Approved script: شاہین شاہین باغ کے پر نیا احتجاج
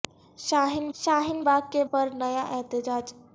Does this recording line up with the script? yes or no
yes